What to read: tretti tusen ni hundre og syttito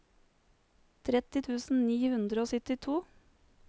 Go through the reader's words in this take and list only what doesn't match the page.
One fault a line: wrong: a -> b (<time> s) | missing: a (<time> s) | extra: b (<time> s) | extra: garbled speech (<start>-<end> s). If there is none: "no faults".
no faults